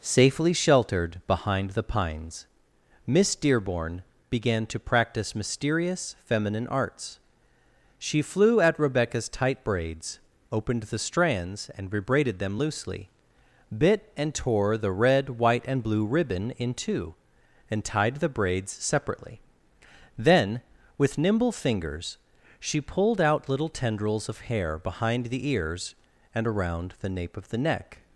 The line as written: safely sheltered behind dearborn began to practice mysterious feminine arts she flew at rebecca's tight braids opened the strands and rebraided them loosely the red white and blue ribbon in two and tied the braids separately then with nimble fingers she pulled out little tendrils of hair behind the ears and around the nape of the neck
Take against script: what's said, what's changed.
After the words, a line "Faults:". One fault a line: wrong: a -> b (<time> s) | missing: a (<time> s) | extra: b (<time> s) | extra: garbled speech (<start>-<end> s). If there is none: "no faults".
safely sheltered behind the pines miss dearborn began to practice mysterious feminine arts she flew at rebecca's tight braids opened the strands and rebraided them loosely bit and tore the red white and blue ribbon in two and tied the braids separately then with nimble fingers she pulled out little tendrils of hair behind the ears and around the nape of the neck
Faults:
extra: the pines miss (1.7 s)
extra: bit and tore (13.8 s)